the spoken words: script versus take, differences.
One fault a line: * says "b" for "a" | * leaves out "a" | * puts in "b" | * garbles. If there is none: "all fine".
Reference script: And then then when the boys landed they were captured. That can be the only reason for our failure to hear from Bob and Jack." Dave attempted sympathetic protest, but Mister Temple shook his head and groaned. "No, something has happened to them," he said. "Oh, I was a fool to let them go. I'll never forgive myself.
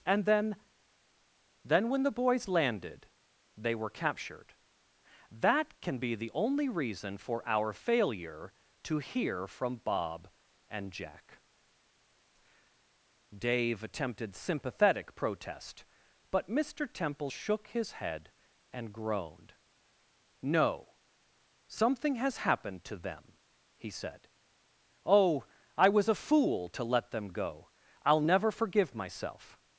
all fine